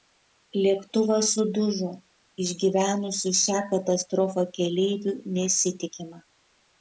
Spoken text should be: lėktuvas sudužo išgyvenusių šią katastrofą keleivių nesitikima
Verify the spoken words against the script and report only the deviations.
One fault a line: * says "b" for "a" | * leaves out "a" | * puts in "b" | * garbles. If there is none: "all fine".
all fine